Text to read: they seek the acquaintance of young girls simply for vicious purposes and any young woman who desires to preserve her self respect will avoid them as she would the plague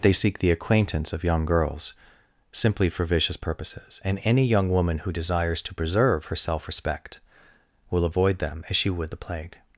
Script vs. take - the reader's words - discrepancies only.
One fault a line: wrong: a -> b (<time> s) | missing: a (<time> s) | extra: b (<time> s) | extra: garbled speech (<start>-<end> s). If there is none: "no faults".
no faults